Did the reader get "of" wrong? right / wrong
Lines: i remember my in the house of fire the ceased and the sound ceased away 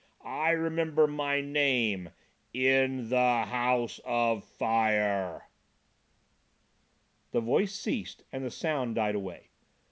right